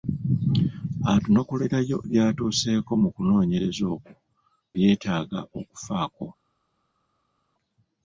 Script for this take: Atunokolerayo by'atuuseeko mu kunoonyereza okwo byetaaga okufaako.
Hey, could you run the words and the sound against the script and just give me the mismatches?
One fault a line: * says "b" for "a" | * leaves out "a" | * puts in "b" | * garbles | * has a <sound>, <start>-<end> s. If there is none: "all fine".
all fine